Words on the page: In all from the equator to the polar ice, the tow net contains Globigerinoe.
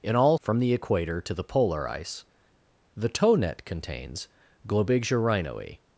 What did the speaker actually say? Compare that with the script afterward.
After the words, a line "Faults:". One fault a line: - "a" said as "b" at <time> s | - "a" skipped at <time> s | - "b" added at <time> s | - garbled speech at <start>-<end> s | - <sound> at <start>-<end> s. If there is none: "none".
In all from the equator to the polar ice, the tow net contains Globigerinoe.
Faults:
none